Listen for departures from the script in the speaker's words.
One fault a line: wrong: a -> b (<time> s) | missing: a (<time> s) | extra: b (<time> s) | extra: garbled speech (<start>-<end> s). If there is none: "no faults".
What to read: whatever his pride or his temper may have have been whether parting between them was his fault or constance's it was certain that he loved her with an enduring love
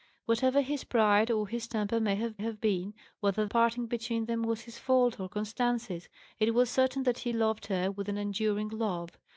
no faults